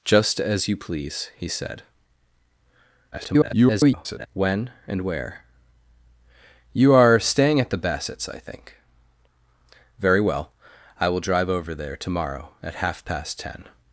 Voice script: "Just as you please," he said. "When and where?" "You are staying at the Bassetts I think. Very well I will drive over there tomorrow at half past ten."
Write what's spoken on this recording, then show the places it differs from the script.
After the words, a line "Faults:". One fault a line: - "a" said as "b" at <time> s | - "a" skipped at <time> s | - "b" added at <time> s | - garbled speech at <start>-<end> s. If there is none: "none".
"Just as you please," he said. [garbled] "When and where?" "You are staying at the Bassetts I think. Very well I will drive over there tomorrow at half past ten."
Faults:
- garbled speech at 3.1-4.3 s